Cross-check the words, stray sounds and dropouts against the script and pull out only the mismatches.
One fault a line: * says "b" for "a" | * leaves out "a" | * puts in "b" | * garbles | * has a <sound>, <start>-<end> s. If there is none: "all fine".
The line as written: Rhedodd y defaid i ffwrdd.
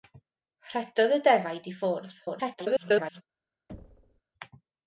* garbles
* has a thud, 3.7-4.2 s